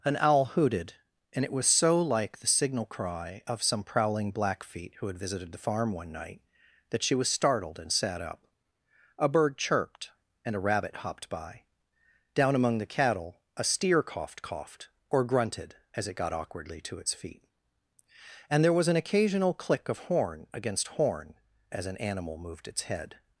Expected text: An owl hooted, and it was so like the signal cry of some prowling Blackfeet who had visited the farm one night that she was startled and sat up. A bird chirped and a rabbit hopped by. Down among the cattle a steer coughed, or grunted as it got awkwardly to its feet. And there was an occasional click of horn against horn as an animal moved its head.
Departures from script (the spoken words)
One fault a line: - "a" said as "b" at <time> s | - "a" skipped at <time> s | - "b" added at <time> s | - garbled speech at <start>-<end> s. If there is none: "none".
- "coughed" added at 14.4 s